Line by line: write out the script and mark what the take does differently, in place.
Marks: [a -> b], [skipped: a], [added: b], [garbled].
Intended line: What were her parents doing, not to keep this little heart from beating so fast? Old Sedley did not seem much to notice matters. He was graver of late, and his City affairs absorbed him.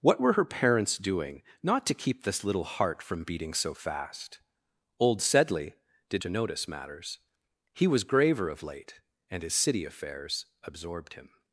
What were her parents doing, not to keep this little heart from beating so fast? Old Sedley did [skipped: not seem much] to notice matters. He was graver of late, and his City affairs absorbed him.